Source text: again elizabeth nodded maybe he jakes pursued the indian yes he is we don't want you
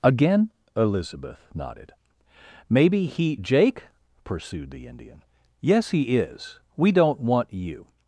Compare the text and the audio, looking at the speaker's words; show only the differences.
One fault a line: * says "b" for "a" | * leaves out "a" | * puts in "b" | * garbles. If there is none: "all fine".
* says "jake" for "jakes"